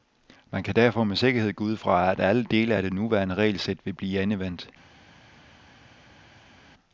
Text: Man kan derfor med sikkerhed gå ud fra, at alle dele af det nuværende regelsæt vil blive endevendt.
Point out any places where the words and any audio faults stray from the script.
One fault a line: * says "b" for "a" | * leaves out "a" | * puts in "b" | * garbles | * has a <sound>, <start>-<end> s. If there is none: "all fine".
all fine